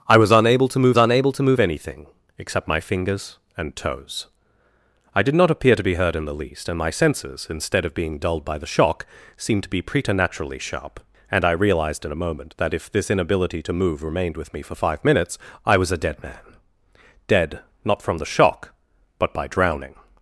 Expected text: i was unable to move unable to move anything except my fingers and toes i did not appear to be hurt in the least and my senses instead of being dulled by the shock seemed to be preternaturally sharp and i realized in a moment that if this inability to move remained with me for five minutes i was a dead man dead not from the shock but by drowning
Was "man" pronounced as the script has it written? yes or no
yes